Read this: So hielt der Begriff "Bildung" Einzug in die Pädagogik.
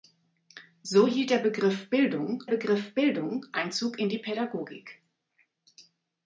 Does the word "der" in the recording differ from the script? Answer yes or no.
no